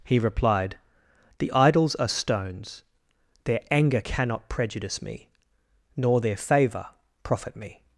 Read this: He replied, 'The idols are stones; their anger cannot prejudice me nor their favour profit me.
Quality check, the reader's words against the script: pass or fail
pass